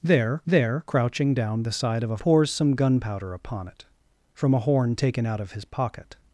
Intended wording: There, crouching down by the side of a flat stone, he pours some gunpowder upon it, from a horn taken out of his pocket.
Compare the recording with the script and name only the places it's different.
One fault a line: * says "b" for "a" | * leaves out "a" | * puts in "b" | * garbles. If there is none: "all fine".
* puts in "there"
* leaves out "by"
* leaves out "flat stone he"